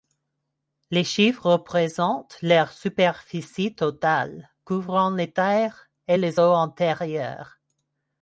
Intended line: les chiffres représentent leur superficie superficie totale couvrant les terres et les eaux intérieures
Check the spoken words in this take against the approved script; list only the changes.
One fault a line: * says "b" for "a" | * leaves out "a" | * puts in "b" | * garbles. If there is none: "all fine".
* leaves out "superficie"